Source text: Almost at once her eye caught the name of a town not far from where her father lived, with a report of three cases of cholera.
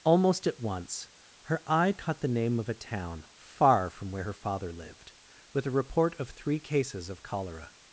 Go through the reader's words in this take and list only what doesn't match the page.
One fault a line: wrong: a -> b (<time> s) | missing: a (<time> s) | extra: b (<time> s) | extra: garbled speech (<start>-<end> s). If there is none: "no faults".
missing: not (3.2 s)